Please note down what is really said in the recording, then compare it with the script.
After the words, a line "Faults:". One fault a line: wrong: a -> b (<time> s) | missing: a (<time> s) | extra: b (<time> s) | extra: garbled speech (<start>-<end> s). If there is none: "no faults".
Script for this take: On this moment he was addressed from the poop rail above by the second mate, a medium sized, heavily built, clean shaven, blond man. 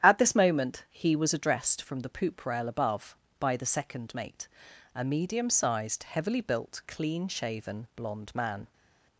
At this moment he was addressed from the poop rail above by the second mate, a medium sized, heavily built, clean shaven, blond man.
Faults:
wrong: On -> At (0.0 s)